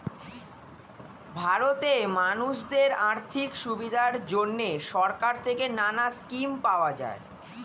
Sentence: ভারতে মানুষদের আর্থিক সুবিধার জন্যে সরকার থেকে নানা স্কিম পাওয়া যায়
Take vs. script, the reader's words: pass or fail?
pass